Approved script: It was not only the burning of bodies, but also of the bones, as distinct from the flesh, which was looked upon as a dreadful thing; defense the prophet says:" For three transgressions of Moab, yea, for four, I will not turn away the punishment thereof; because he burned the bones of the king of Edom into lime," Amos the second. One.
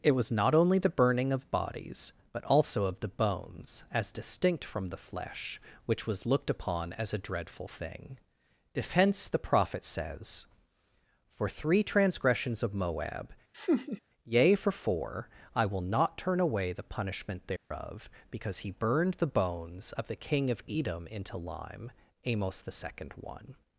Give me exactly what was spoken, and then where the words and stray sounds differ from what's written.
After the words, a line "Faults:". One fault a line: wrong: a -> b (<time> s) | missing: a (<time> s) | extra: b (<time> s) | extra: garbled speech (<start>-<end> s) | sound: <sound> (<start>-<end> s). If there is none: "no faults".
It was not only the burning of bodies, but also of the bones, as distinct from the flesh, which was looked upon as a dreadful thing; defense the prophet says:" For three transgressions of Moab, yea, for four, I will not turn away the punishment thereof; because he burned the bones of the king of Edom into lime," Amos the second. One.
Faults:
sound: laugh (13.5-14.0 s)
sound: dropout (17.6-17.7 s)